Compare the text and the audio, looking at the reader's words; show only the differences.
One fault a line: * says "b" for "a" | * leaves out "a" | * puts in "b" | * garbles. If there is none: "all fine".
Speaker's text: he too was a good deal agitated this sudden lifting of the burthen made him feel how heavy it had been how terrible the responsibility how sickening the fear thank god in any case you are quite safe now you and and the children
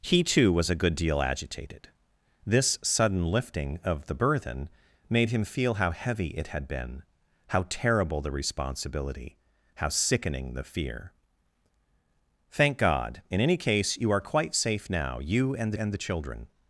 all fine